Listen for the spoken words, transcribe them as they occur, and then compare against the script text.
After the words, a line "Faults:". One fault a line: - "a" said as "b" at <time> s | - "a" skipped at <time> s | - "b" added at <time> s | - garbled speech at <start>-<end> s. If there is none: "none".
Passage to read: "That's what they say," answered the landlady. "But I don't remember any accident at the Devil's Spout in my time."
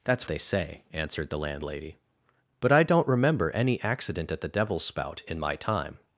"That's they say," answered the landlady. "But I don't remember any accident at the Devil's Spout in my time."
Faults:
- "what" skipped at 0.3 s